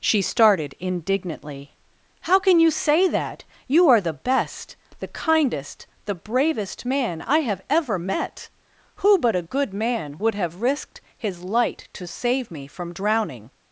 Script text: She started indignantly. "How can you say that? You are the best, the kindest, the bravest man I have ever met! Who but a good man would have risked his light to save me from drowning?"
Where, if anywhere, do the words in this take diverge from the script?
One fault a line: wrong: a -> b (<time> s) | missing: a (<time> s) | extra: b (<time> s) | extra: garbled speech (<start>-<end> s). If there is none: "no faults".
no faults